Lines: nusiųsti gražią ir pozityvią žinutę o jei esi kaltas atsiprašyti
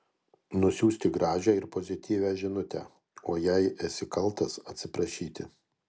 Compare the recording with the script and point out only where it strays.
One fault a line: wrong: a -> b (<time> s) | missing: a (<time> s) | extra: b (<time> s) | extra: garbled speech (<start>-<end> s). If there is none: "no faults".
no faults